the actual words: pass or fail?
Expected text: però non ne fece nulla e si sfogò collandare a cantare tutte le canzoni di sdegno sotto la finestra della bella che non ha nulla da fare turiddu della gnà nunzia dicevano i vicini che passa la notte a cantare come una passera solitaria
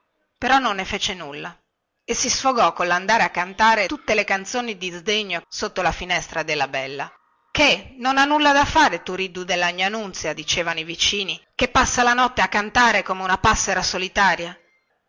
pass